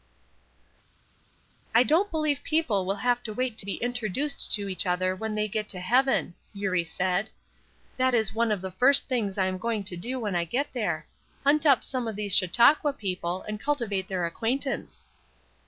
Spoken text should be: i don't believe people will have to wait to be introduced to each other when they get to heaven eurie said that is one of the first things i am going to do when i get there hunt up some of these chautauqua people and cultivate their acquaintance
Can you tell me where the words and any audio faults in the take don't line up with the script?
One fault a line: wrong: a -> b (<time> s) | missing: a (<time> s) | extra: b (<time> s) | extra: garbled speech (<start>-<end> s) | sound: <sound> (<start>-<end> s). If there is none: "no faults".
no faults